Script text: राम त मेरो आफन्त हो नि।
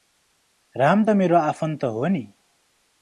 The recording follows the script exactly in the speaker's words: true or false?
true